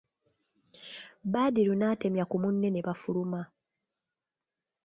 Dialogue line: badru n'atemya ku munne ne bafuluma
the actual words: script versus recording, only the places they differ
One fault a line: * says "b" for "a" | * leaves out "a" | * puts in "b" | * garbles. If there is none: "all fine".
all fine